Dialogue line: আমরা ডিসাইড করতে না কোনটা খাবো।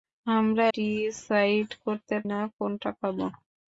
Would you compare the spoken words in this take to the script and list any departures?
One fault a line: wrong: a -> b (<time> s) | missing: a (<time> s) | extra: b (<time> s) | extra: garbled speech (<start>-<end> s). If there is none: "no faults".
no faults